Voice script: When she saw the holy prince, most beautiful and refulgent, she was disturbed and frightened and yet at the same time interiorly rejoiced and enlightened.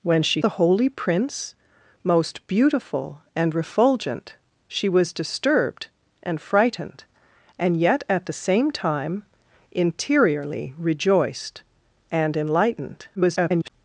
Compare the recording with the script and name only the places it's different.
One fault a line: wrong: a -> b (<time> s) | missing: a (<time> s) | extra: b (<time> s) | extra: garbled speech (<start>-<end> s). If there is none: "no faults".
missing: saw (0.4 s)
extra: garbled speech (13.2-13.7 s)